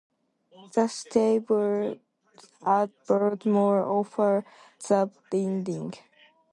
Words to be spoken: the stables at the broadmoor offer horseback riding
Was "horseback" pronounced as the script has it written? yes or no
no